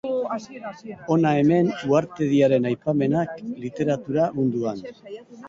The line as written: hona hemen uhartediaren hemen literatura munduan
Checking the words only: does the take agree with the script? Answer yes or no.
no